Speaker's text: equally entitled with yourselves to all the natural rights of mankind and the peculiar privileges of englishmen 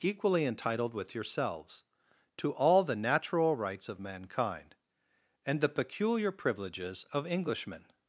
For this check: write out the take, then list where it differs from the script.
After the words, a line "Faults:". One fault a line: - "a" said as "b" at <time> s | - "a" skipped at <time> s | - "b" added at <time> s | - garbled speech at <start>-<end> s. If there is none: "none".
equally entitled with yourselves to all the natural rights of mankind and the peculiar privileges of englishmen
Faults:
none